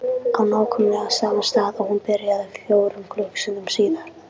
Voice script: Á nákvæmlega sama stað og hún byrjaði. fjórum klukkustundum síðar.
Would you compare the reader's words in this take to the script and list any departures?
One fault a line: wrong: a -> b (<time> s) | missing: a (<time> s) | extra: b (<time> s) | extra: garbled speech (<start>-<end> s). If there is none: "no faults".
no faults